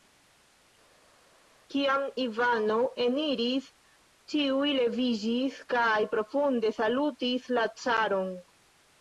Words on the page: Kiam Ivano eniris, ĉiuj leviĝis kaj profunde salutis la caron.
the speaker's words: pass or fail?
pass